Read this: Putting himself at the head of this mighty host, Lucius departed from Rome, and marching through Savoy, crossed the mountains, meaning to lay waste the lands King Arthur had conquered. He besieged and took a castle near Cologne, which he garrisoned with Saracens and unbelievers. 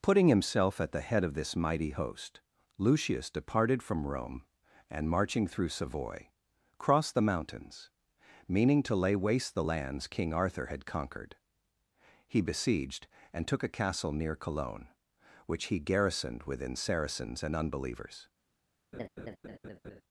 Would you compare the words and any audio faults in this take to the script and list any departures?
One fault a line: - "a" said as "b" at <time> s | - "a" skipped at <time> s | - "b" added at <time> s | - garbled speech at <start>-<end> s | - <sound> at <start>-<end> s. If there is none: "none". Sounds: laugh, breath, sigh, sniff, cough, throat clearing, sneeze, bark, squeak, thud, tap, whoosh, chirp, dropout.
- "with" said as "within" at 16.4 s
- laugh at 18.9-20.0 s